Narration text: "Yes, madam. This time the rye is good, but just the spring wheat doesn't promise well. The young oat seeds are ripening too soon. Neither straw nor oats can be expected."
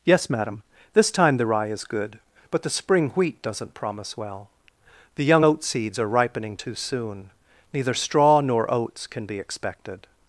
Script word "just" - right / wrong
wrong